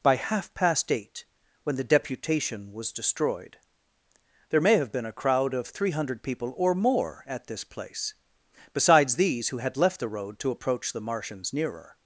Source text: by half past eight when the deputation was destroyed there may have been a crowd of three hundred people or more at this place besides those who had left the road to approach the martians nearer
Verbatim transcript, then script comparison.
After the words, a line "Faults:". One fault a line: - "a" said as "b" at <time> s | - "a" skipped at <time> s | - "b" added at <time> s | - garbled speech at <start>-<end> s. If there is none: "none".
by half past eight when the deputation was destroyed there may have been a crowd of three hundred people or more at this place besides these who had left the road to approach the martians nearer
Faults:
- "those" said as "these" at 9.2 s